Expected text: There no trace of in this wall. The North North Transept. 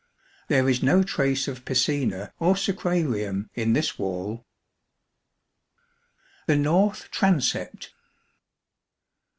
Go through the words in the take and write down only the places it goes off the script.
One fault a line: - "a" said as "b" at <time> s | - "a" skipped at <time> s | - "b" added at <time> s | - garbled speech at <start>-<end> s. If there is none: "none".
- "is" added at 0.7 s
- "piscina or sacrarium" added at 1.6 s
- "North" skipped at 7.1 s